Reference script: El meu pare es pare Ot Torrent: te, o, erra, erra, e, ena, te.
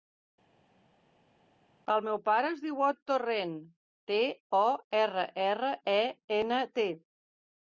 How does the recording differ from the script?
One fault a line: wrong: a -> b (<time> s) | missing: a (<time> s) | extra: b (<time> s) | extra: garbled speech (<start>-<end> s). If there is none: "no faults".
wrong: pare -> diu (2.6 s)